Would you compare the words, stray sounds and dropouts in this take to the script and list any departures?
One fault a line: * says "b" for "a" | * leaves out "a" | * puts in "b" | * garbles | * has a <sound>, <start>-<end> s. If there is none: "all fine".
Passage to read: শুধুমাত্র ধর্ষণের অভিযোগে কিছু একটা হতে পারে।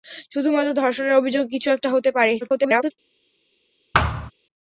* garbles
* has a thud, 3.9-4.3 s